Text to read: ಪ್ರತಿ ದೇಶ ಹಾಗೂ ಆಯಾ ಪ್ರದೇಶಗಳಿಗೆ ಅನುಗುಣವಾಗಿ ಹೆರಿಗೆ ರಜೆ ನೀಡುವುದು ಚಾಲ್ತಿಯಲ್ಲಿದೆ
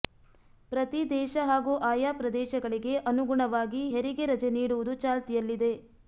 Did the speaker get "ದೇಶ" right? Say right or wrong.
right